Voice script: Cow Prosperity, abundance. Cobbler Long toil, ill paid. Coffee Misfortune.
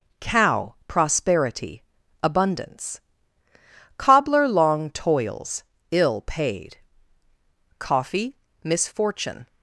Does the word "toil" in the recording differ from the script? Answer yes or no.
yes